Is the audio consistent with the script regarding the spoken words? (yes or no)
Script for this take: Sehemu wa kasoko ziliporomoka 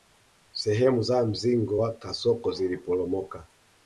no